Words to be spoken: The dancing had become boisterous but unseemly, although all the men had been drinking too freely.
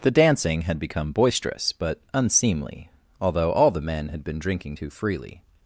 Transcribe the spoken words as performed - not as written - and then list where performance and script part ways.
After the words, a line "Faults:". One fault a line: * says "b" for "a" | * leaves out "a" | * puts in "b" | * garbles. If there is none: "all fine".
The dancing had become boisterous but unseemly, although all the men had been drinking too freely.
Faults:
all fine